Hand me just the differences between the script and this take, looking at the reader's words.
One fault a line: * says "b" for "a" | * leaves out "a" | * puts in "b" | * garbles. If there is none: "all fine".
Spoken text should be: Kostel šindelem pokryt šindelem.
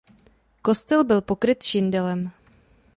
* says "byl" for "šindelem"